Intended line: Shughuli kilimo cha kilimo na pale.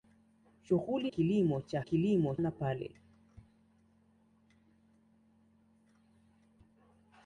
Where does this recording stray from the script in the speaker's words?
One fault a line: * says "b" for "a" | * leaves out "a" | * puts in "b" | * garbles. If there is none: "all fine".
all fine